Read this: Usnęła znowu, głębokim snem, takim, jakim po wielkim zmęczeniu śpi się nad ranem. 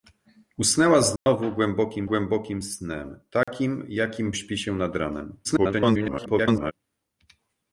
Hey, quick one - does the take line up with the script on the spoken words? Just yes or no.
no